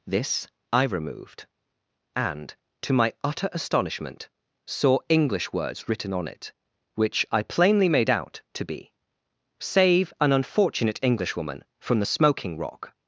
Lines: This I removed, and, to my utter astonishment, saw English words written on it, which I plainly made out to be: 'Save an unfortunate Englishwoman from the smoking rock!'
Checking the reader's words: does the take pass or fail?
pass